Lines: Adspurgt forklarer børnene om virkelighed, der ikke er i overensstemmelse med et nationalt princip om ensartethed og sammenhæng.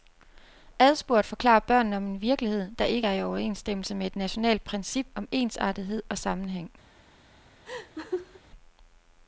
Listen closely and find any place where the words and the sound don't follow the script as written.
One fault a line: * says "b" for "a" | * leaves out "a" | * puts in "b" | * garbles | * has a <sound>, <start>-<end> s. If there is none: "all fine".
* puts in "en"
* has a laugh, 7.7-8.4 s